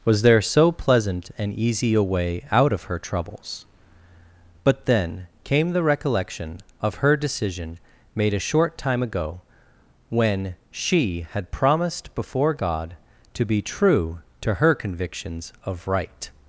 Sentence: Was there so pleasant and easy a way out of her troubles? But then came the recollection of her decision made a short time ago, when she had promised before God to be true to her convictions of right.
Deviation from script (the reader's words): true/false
false